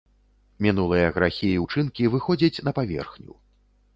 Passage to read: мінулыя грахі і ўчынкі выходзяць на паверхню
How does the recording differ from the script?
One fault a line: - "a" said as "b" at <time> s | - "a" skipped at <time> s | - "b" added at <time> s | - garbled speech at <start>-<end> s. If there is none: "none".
none